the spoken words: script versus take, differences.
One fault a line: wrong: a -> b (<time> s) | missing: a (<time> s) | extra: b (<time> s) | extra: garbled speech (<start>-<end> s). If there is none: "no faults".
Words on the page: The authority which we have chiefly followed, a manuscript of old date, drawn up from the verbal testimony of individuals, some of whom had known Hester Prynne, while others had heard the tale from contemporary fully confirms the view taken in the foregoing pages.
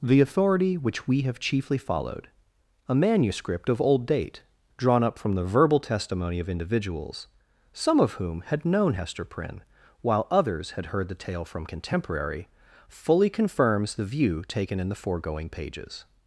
no faults